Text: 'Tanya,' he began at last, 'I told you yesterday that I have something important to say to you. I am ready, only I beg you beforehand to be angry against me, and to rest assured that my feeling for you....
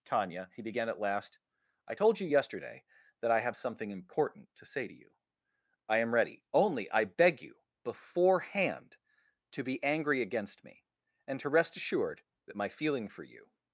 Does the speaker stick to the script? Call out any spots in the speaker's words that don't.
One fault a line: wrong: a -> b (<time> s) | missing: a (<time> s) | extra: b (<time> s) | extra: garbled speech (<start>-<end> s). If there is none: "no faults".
no faults